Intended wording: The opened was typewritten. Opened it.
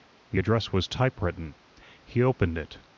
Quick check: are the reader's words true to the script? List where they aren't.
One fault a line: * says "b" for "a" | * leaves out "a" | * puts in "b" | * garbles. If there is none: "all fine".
* says "address" for "opened"
* puts in "He"